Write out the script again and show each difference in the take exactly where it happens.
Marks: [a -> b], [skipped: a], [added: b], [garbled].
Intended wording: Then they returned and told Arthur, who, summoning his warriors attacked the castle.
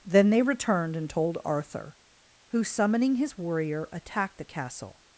Then they returned and told Arthur, who, summoning his [warriors -> warrior] attacked the castle.